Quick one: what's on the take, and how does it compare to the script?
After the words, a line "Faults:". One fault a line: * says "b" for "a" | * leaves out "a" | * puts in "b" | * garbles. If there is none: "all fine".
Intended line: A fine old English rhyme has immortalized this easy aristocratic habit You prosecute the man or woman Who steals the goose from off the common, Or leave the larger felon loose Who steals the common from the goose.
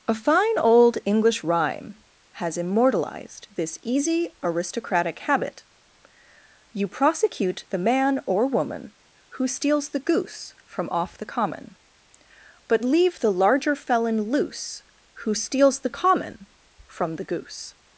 A fine old English rhyme has immortalized this easy aristocratic habit You prosecute the man or woman Who steals the goose from off the common, But leave the larger felon loose Who steals the common from the goose.
Faults:
* says "But" for "Or"